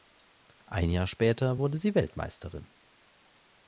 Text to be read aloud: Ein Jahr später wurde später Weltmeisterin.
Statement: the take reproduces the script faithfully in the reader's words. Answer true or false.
false